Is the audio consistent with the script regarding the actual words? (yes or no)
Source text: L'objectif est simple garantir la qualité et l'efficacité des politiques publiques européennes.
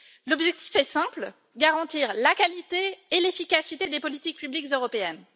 yes